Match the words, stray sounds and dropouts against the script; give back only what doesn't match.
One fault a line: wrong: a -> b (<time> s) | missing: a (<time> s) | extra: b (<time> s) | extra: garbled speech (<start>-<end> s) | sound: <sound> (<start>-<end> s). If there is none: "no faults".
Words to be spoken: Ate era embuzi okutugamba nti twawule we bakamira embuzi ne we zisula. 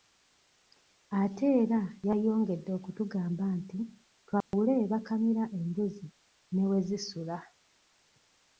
wrong: embuzi -> yayongedde (2.1 s)
sound: dropout (4.4-4.5 s)